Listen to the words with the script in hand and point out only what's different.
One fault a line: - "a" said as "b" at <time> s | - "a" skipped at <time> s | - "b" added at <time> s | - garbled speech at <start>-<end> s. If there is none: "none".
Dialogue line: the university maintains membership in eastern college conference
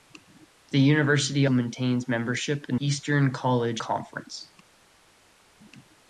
none